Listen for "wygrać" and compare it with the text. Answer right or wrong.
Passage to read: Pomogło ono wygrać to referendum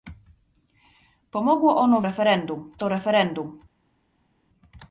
wrong